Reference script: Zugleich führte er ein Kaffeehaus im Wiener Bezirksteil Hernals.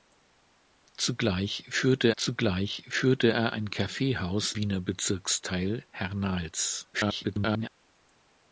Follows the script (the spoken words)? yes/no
no